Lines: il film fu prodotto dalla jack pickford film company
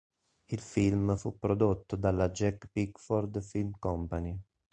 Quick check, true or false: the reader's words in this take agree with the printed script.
true